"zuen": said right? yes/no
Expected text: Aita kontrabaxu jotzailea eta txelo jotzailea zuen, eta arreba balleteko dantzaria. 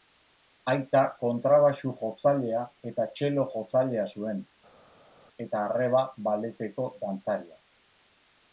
yes